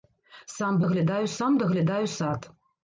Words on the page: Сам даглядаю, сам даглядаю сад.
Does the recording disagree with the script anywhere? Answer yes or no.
no